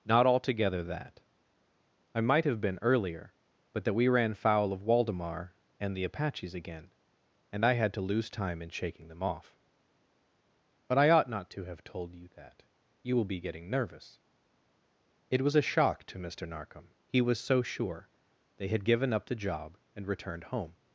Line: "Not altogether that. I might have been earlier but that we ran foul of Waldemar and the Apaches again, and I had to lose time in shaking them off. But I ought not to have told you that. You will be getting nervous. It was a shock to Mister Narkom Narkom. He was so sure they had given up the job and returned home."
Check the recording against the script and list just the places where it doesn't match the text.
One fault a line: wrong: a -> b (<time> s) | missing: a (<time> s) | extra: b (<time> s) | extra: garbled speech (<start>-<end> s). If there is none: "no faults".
missing: Narkom (16.9 s)